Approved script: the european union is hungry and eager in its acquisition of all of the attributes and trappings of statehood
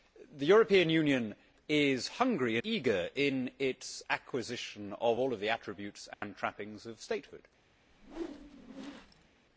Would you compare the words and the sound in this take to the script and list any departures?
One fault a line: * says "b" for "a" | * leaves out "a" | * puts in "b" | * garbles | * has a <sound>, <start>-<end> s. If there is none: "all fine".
* leaves out "and"
* has a dropout, 6.1-6.2 s
* has a whoosh, 7.9-9.3 s